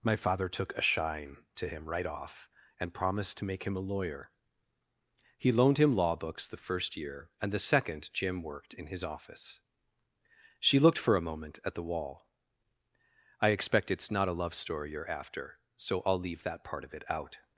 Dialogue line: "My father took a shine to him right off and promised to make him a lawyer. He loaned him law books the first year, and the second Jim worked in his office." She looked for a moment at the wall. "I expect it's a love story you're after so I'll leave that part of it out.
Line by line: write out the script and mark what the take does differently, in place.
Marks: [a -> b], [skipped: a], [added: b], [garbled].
"My father took a shine to him right off and promised to make him a lawyer. He loaned him law books the first year, and the second Jim worked in his office." She looked for a moment at the wall. "I expect it's [added: not] a love story you're after so I'll leave that part of it out.